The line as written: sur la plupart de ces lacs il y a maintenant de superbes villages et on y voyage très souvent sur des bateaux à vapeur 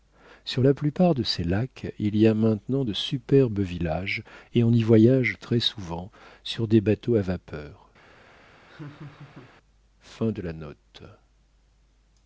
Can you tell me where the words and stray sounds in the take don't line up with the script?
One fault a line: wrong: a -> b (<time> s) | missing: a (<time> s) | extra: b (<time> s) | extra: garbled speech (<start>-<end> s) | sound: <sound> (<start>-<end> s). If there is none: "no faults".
sound: laugh (8.7-9.6 s)